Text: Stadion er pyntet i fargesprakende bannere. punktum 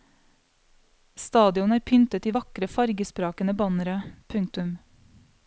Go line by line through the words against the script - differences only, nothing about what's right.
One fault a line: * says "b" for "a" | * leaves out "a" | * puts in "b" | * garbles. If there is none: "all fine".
* puts in "vakre"